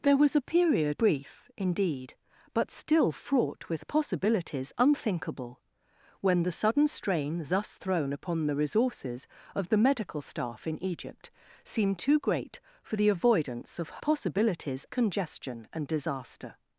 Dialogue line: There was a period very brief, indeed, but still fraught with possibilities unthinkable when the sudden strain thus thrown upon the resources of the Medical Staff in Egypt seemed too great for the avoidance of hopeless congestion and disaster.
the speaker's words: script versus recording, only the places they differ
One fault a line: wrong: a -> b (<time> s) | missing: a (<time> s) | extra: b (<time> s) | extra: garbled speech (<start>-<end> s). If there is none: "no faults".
missing: very (1.0 s)
wrong: hopeless -> possibilities (14.0 s)